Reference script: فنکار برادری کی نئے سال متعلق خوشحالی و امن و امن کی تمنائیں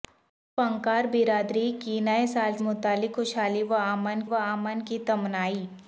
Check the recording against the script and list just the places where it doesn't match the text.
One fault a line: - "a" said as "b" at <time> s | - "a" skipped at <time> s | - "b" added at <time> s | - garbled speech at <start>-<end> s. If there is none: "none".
none